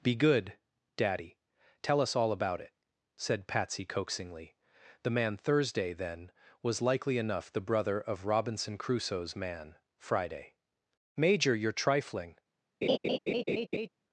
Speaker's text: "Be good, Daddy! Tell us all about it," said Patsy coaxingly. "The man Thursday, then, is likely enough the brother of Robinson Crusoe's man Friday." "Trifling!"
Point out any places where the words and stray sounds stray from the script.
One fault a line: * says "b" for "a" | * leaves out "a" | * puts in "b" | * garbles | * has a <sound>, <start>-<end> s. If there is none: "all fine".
* says "was" for "is"
* puts in "Major you're"
* has a laugh, 12.8-13.9 s